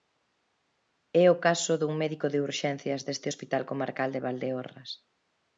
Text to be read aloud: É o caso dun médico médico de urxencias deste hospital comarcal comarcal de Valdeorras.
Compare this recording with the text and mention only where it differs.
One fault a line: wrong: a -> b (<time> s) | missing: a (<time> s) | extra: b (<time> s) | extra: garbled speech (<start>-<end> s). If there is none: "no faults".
missing: médico (2.3 s)
missing: comarcal (4.1 s)